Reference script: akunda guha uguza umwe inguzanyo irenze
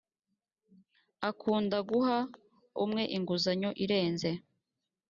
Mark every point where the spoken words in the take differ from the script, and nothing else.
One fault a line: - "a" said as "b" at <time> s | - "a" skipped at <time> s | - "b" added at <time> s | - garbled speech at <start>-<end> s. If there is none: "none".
- "uguza" skipped at 2.2 s